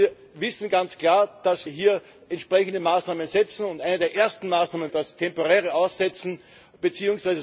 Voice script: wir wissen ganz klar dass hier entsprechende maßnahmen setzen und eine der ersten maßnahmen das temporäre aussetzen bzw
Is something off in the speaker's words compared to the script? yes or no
no